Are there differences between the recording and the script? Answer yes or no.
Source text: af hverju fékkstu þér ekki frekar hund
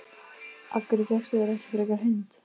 no